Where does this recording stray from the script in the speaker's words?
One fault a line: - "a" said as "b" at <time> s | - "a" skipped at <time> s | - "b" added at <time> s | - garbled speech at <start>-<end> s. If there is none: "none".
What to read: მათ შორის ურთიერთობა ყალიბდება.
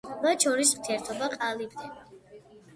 none